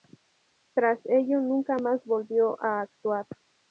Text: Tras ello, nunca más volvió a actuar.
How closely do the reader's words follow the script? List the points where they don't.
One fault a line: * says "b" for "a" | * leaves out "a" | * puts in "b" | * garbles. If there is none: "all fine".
all fine